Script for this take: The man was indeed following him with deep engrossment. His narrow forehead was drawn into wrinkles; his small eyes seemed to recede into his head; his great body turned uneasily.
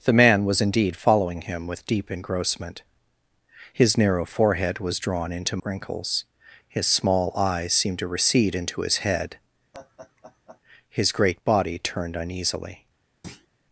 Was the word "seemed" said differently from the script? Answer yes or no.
no